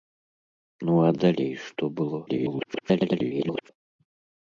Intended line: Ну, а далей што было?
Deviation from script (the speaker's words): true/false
true